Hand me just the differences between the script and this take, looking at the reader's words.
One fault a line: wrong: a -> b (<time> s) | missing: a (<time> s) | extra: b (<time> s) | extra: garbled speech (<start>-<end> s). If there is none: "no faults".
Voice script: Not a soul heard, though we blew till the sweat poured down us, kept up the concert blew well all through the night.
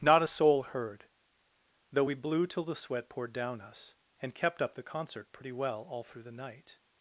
extra: and (4.2 s)
wrong: blew -> pretty (5.3 s)